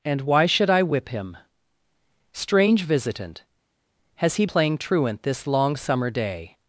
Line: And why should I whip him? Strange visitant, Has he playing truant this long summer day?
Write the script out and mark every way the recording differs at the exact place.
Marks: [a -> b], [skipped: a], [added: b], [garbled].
And why should I whip him? Strange visitant, Has he playing truant this long summer day?